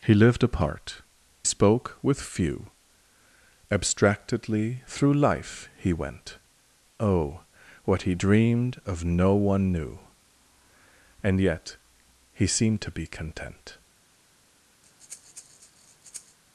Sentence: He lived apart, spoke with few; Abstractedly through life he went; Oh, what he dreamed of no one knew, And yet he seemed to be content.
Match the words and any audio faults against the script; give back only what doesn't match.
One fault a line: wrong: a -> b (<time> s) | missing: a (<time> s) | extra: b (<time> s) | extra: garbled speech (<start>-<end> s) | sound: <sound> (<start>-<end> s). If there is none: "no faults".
sound: breath (14.8-16.4 s)